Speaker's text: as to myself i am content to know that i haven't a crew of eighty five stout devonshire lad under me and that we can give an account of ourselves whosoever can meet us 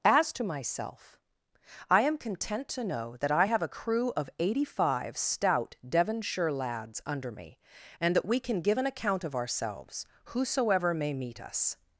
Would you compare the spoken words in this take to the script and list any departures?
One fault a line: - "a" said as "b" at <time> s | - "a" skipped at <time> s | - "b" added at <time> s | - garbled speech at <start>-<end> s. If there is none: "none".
- "haven't" said as "have" at 3.4 s
- "lad" said as "lads" at 6.5 s
- "can" said as "may" at 10.9 s